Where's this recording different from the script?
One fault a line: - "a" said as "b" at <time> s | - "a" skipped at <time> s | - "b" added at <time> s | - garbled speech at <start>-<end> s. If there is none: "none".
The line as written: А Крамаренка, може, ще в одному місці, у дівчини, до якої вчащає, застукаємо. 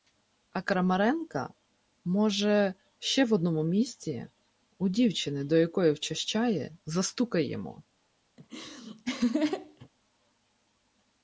none